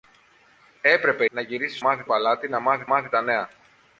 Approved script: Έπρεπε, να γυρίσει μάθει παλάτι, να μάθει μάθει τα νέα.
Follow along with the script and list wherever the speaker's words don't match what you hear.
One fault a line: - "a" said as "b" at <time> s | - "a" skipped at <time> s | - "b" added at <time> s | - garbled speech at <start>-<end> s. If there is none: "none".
none